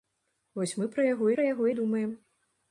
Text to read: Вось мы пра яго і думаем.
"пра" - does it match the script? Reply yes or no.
yes